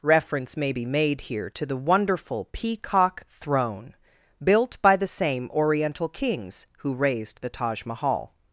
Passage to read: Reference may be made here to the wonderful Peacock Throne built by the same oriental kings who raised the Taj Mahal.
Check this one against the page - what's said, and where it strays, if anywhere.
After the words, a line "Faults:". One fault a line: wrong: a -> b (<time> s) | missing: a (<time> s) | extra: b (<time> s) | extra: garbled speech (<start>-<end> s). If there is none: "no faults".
Reference may be made here to the wonderful Peacock Throne built by the same oriental kings who raised the Taj Mahal.
Faults:
no faults